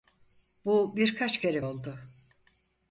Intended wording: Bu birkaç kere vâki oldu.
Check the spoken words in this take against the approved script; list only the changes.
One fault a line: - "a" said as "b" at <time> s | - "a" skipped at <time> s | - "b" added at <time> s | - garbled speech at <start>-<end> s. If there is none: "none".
- "vâki" skipped at 1.7 s